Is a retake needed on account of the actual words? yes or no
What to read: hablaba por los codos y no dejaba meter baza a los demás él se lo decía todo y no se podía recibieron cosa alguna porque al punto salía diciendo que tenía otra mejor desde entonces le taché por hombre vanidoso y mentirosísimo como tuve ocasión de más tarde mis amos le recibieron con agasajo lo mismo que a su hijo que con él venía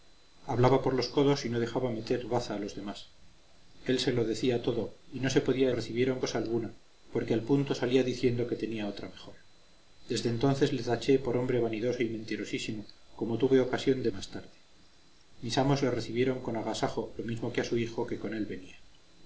no